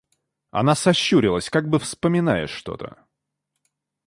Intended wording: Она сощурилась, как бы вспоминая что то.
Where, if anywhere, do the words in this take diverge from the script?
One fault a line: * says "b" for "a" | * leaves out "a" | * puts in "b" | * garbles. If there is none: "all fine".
all fine